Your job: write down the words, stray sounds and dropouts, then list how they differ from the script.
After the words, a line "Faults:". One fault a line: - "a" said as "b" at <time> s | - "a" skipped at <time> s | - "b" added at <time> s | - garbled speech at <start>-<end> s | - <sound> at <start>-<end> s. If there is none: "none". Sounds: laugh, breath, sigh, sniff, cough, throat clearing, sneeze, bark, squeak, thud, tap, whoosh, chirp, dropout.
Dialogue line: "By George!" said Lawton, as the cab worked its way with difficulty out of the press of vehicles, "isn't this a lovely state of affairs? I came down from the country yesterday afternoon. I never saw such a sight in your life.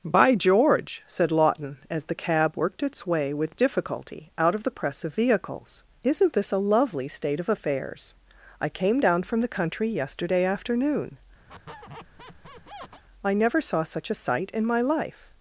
"By George!" said Lawton, as the cab worked its way with difficulty out of the press of vehicles, "isn't this a lovely state of affairs? I came down from the country yesterday afternoon. I never saw such a sight in my life.
Faults:
- squeak at 11.5-13.0 s
- "your" said as "my" at 14.7 s